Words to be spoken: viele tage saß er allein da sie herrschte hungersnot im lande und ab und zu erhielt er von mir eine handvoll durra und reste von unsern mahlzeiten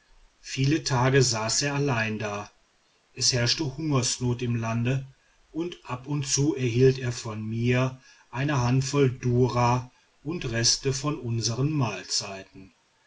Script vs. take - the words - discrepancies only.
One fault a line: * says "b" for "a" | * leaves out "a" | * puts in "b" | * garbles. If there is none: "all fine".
* says "es" for "sie"